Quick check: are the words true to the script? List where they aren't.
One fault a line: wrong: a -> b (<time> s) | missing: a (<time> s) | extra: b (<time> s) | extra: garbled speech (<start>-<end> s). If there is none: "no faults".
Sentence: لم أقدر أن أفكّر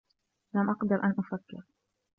no faults